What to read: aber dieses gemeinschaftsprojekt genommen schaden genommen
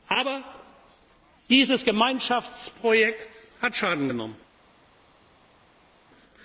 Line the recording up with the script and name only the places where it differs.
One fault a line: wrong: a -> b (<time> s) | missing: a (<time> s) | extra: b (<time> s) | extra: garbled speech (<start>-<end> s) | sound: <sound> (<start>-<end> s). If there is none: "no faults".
wrong: genommen -> hat (3.6 s)